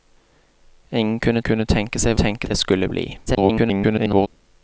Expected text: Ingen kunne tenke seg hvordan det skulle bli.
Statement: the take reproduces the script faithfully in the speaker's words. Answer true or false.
false